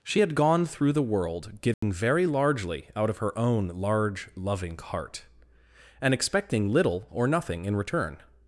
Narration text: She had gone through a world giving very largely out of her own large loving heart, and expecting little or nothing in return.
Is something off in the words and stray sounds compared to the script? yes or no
yes